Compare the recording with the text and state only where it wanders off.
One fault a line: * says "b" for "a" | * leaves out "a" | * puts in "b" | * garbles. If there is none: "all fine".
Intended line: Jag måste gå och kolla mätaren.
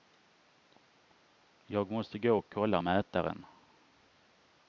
all fine